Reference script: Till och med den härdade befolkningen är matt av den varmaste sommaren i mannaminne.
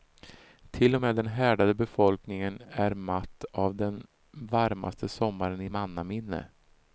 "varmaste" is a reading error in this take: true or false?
false